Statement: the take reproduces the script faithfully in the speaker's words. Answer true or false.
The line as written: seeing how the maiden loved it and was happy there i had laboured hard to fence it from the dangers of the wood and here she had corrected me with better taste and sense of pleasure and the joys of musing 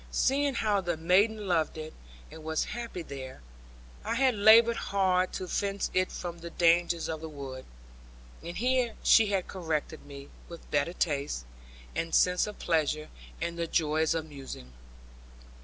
true